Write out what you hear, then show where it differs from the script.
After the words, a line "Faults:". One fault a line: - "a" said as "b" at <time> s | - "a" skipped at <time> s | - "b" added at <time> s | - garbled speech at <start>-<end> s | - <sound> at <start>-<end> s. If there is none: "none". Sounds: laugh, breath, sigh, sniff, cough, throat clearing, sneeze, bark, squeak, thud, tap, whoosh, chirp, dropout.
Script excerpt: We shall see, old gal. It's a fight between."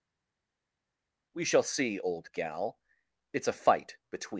We shall see, old gal. It's a fight between."
Faults:
none